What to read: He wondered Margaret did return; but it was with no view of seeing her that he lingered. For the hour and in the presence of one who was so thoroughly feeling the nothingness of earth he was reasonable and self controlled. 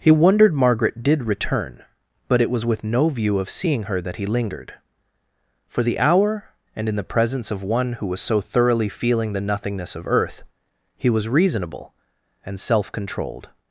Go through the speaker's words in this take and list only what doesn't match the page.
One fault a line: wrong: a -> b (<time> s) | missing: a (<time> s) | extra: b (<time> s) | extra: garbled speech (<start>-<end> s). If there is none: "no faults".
no faults